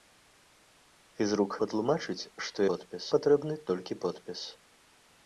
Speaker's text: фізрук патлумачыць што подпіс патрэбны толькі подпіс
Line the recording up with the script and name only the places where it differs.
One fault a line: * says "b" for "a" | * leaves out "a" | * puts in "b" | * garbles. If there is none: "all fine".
all fine